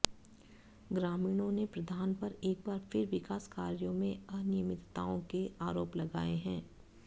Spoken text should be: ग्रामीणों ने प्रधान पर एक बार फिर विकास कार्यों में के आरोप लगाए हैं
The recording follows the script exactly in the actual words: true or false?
false